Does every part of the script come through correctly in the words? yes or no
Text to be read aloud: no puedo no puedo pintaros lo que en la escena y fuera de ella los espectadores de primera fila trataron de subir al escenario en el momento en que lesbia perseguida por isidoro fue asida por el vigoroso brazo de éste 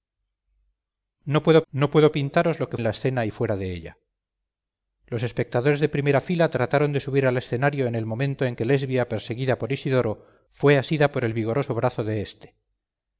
yes